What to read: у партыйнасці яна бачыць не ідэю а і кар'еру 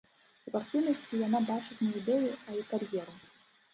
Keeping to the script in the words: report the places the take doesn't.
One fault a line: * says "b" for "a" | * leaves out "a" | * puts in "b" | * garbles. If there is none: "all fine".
all fine